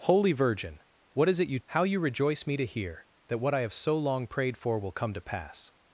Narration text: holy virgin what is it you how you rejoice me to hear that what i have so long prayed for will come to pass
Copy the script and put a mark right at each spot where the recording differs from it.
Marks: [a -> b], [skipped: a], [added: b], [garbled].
holy virgin what is it you how you rejoice me to hear that what i have so long prayed for will come to pass